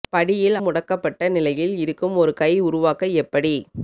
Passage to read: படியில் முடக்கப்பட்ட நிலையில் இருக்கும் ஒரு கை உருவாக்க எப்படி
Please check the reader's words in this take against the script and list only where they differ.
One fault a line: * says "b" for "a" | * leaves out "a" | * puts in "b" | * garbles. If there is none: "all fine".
all fine